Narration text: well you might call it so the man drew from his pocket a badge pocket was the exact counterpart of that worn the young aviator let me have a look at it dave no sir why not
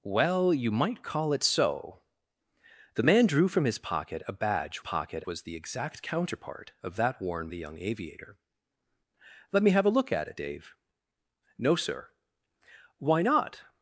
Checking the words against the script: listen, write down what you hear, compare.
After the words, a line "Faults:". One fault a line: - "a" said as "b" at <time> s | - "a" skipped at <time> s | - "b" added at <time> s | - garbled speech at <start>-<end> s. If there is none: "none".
well you might call it so the man drew from his pocket a badge pocket was the exact counterpart of that worn the young aviator let me have a look at it dave no sir why not
Faults:
none